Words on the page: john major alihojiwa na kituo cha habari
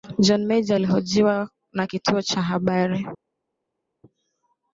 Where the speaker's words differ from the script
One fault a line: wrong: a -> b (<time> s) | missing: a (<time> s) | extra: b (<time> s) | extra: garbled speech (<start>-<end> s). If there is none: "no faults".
no faults